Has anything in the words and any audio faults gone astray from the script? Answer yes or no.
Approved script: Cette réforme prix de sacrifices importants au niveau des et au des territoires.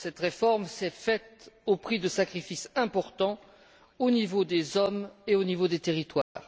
yes